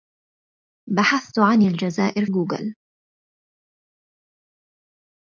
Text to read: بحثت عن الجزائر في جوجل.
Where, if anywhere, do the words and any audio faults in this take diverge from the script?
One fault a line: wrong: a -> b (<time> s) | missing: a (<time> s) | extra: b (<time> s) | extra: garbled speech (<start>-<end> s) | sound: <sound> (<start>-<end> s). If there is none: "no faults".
missing: في (2.3 s)